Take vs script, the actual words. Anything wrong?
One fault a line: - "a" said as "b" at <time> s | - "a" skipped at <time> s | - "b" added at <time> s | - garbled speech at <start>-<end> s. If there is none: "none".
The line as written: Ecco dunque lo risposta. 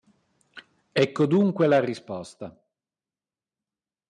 - "lo" said as "la" at 1.7 s